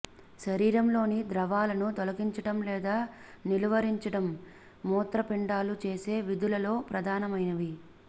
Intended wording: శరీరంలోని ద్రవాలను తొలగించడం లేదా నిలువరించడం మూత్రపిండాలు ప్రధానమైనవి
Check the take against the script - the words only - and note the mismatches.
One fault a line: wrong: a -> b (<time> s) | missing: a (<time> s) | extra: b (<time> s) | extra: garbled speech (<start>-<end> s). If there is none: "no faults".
extra: చేసే విధులలో (5.9 s)